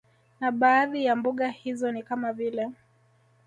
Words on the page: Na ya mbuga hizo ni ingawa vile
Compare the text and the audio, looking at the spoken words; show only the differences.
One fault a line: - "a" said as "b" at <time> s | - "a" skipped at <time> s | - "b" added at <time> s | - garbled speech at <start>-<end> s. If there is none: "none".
- "baadhi" added at 0.5 s
- "ingawa" said as "kama" at 2.0 s